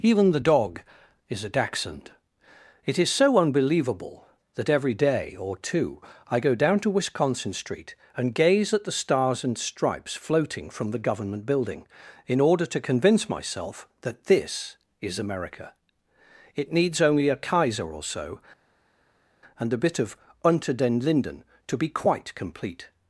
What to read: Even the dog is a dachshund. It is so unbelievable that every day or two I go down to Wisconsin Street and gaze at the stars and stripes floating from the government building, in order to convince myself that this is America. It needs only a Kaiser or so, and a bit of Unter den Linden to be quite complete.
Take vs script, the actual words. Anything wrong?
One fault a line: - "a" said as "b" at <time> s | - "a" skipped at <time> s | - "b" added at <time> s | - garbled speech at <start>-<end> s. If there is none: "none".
none